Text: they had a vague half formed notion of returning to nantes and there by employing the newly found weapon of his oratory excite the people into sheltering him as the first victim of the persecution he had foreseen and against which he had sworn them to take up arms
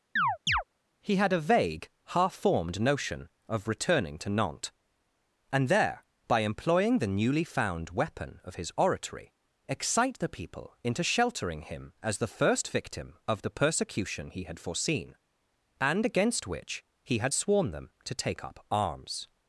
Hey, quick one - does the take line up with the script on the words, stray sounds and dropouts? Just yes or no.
no